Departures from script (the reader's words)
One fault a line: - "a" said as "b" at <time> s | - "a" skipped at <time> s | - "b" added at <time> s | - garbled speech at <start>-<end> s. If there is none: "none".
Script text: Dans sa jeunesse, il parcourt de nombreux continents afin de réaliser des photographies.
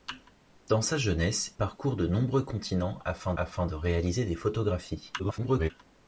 - "il" skipped at 1.5 s
- "afin" added at 3.4 s
- garbled speech at 5.2-5.7 s